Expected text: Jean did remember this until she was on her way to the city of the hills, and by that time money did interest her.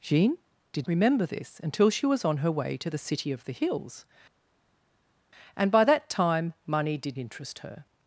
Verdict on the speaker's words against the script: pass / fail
pass